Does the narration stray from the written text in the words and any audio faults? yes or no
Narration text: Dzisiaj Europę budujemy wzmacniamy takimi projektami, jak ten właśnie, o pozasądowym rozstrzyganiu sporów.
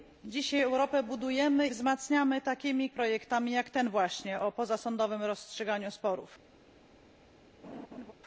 yes